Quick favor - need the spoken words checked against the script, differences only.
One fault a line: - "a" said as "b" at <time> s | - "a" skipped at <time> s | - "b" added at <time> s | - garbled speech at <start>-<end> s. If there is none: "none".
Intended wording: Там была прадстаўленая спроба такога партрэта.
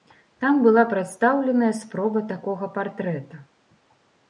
none